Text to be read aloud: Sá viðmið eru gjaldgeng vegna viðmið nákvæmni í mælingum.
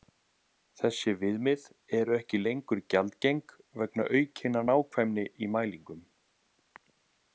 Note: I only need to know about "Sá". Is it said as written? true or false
false